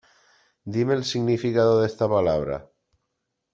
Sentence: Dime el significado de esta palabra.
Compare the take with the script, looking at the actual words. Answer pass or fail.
pass